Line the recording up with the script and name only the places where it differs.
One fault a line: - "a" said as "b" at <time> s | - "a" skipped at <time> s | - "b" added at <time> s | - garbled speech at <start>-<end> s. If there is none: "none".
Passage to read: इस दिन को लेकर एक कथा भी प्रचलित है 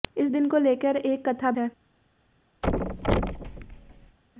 - "भी प्रचलित" skipped at 1.5 s